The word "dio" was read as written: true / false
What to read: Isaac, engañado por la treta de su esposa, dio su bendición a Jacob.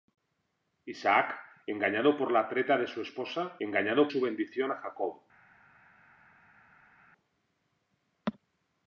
false